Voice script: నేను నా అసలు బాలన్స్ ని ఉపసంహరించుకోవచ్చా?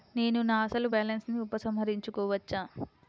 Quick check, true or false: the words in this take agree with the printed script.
true